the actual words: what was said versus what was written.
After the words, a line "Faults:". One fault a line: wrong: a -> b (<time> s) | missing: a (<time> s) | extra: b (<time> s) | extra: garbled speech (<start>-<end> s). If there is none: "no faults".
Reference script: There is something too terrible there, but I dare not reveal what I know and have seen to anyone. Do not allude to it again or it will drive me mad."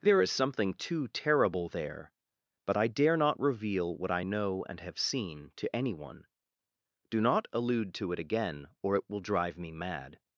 There is something too terrible there, but I dare not reveal what I know and have seen to anyone. Do not allude to it again or it will drive me mad."
Faults:
no faults